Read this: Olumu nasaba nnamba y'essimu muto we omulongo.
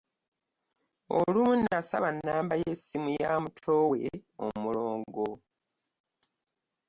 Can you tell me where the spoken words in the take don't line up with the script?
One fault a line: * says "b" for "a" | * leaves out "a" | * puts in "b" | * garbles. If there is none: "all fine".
* puts in "ya"